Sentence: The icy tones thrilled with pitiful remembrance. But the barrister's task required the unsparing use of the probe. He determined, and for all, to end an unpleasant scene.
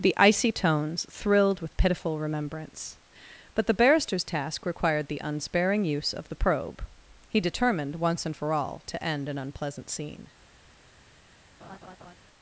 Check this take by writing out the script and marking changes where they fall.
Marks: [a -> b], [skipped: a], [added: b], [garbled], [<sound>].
The icy tones thrilled with pitiful remembrance. But the barrister's task required the unsparing use of the probe. He determined, [added: once] and for all, to end an unpleasant scene. [laugh]